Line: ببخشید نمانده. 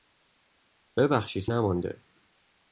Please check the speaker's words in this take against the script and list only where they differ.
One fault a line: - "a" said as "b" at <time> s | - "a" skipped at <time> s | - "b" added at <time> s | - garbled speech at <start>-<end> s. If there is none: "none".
none